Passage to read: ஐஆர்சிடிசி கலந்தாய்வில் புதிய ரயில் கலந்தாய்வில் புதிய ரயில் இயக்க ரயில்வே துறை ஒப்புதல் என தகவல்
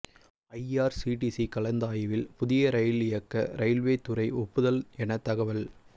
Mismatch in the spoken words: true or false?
true